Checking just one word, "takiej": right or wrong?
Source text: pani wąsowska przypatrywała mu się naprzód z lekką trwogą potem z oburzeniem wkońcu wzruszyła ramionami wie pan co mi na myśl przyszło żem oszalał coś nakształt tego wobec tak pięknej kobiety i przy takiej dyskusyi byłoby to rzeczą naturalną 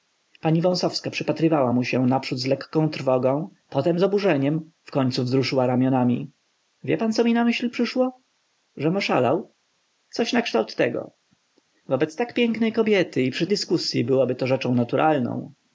wrong